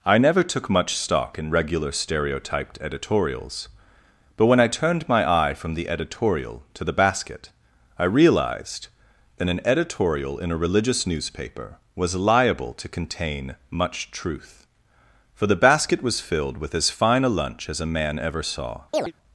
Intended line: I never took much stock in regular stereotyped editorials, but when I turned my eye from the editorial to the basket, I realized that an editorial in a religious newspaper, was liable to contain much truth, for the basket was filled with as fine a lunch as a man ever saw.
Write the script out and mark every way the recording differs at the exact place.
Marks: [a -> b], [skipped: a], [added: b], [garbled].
I never took much stock in regular stereotyped editorials, but when I turned my eye from the editorial to the basket, I realized that an editorial in a religious newspaper, was liable to contain much truth, for the basket was filled with as fine a lunch as a man ever saw.